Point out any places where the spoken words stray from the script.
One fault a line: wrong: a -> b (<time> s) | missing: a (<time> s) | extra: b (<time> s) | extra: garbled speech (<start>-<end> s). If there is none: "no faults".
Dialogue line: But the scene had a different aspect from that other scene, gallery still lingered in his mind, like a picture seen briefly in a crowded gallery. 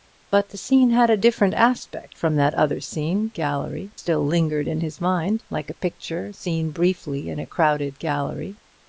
no faults